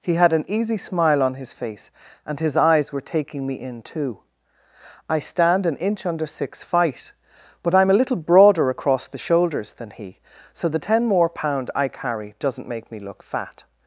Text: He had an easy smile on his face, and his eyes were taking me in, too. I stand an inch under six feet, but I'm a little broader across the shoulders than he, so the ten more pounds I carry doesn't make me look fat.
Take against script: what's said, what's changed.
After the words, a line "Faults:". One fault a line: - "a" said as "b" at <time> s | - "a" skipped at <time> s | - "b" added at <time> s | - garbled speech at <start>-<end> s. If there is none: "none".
He had an easy smile on his face, and his eyes were taking me in, too. I stand an inch under six fight, but I'm a little broader across the shoulders than he, so the ten more pound I carry doesn't make me look fat.
Faults:
- "feet" said as "fight" at 6.6 s
- "pounds" said as "pound" at 11.3 s